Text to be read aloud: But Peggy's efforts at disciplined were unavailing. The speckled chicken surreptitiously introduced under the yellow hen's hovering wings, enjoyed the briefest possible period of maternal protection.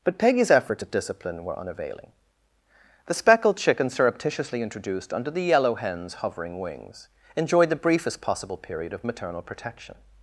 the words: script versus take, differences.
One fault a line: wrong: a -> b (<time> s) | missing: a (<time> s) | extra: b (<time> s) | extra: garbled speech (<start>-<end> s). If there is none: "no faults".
wrong: disciplined -> discipline (0.9 s)